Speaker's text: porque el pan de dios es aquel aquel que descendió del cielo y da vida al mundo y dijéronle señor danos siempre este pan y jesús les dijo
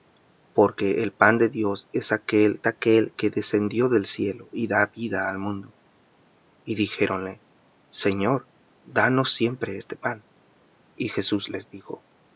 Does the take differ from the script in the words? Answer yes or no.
no